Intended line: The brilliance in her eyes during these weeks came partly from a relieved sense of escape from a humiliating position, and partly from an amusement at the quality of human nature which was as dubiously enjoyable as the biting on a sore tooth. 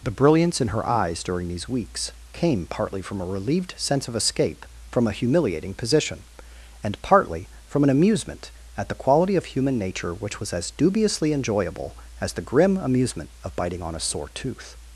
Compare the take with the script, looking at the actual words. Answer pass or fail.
fail